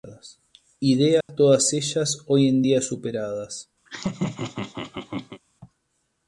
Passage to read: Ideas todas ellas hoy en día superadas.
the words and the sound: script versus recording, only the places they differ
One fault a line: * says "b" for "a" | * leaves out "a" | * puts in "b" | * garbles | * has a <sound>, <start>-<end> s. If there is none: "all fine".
* has a dropout, 1.2-1.3 s
* has a laugh, 3.9-5.4 s